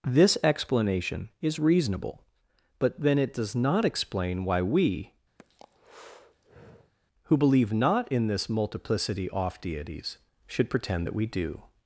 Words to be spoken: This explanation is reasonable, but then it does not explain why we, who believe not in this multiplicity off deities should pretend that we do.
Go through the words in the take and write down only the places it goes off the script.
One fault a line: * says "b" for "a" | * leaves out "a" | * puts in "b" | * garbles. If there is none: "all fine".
all fine